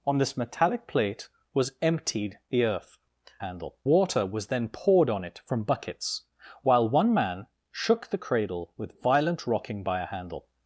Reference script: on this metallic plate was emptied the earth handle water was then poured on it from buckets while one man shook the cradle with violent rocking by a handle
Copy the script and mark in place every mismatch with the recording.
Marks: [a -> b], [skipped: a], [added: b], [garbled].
on this metallic plate was emptied the earth handle water was then poured on it from buckets while one man shook the cradle with violent rocking by a handle